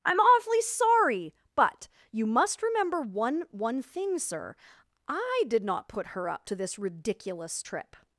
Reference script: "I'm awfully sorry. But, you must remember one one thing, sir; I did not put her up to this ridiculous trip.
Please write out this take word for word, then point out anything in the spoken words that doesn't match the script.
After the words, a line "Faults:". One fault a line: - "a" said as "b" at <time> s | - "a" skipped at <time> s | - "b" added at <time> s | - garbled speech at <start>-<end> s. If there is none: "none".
"I'm awfully sorry. But, you must remember one one thing, sir; I did not put her up to this ridiculous trip.
Faults:
none